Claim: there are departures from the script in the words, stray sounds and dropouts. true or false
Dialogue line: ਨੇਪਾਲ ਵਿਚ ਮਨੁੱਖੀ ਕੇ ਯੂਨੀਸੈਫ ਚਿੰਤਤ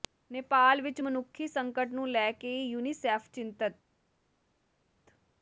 true